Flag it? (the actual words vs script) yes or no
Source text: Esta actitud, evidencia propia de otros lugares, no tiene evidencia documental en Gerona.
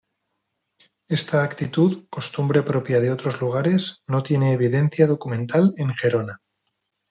yes